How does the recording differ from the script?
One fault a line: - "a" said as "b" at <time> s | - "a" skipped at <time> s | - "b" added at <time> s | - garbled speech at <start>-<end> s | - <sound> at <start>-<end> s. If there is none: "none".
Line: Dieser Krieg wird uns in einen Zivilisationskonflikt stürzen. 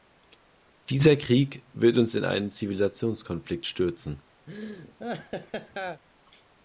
- laugh at 4.5-6.0 s